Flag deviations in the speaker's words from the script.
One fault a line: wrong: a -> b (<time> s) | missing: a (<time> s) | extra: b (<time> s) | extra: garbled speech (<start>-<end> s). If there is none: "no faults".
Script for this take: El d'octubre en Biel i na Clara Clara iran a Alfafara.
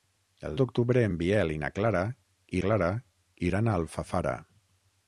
no faults